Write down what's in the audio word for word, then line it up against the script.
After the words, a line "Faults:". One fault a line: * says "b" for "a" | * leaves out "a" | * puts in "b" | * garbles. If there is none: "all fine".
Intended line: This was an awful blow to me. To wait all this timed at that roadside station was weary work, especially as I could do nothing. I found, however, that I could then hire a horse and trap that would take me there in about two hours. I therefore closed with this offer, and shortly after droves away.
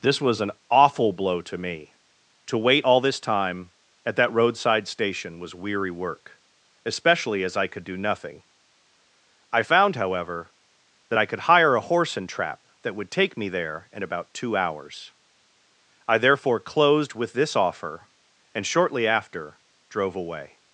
This was an awful blow to me. To wait all this time at that roadside station was weary work, especially as I could do nothing. I found, however, that I could hire a horse and trap that would take me there in about two hours. I therefore closed with this offer, and shortly after drove away.
Faults:
* says "time" for "timed"
* leaves out "then"
* says "drove" for "droves"